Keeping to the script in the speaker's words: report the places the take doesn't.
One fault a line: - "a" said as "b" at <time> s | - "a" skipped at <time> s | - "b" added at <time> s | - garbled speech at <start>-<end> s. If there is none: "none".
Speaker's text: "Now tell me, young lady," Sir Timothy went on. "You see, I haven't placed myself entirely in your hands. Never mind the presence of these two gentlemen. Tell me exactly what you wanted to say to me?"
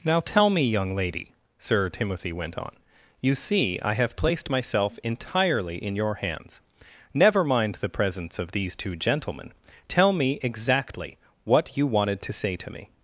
- "haven't" said as "have" at 3.9 s